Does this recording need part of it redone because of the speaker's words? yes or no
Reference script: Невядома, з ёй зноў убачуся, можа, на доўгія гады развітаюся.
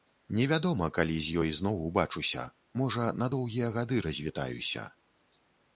yes